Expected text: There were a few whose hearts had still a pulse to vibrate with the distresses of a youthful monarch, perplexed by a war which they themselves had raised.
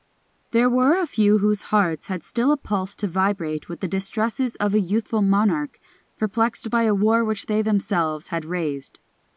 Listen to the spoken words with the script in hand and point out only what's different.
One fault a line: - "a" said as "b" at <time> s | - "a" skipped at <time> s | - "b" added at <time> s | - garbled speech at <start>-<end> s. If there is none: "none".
none